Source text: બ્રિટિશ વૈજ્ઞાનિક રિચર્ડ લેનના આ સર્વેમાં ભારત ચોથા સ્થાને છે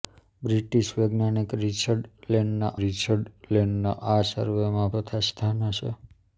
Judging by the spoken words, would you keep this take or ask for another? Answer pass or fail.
fail